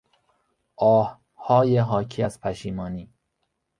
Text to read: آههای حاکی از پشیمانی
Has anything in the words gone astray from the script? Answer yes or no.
no